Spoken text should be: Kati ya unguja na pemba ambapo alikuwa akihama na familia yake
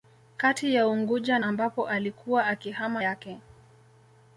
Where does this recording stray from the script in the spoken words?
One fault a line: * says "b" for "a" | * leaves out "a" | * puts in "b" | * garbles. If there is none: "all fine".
* leaves out "na pemba"
* leaves out "na familia"